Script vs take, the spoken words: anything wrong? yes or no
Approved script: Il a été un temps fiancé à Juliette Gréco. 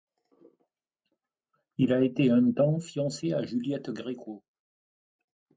no